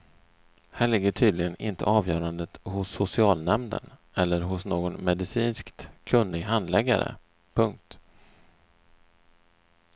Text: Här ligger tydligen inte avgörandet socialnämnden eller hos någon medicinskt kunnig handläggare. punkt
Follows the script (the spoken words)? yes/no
no